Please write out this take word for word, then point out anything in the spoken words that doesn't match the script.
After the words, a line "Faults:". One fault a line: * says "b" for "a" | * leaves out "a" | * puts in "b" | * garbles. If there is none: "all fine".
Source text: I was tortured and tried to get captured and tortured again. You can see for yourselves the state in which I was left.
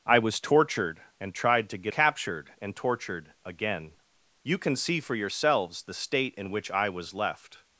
I was tortured and tried to get captured and tortured again. You can see for yourselves the state in which I was left.
Faults:
all fine